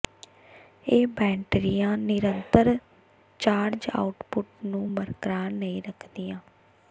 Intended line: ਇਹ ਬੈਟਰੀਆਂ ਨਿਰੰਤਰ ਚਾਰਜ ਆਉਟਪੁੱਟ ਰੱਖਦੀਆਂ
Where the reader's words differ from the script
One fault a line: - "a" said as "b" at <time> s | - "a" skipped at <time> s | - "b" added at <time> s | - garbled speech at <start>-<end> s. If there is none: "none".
- "ਨੂੰ ਬਰਕਰਾਰ ਨਹੀਂ" added at 4.7 s